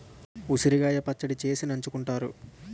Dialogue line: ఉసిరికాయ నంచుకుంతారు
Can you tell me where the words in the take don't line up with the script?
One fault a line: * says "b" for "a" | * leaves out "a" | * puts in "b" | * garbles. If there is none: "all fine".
* puts in "పచ్చడి చేసి"